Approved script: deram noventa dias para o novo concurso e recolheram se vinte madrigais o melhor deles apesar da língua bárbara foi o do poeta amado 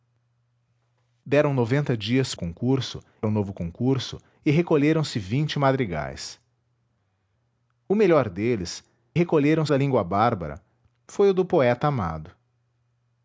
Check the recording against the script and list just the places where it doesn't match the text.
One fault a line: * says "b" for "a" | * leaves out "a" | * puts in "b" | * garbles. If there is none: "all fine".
* says "concurso" for "para"
* says "recolheram" for "apesar"